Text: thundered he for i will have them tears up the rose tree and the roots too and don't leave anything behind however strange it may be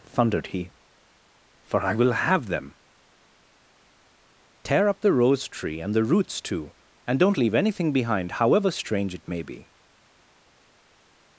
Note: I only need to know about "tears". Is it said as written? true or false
false